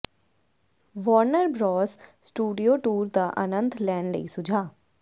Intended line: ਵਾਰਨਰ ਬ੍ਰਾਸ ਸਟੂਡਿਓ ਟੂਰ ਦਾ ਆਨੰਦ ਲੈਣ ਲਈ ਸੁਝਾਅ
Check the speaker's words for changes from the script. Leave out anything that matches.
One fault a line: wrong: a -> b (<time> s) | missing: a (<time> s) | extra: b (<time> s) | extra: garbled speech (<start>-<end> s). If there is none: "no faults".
no faults